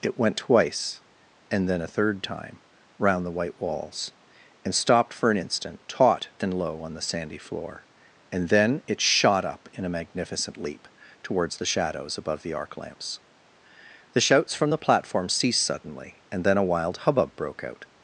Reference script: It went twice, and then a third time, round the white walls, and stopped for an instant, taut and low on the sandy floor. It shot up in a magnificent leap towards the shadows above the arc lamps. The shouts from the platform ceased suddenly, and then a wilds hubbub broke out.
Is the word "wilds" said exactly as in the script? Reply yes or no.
no